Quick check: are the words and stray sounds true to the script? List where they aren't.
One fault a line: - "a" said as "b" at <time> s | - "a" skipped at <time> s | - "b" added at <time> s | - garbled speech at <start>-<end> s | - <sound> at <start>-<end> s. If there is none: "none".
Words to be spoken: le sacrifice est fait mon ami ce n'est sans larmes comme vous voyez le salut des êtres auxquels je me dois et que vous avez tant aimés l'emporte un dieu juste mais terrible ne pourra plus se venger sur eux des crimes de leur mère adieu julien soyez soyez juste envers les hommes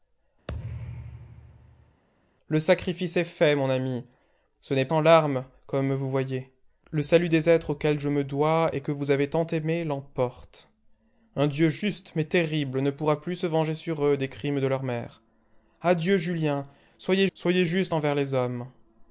- thud at 0.5-2.0 s